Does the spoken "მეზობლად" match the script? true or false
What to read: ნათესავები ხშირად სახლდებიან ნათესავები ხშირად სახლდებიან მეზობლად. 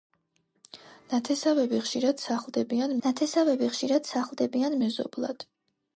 true